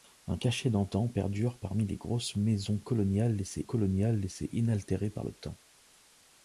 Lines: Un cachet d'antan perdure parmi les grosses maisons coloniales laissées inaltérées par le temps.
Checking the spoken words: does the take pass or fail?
fail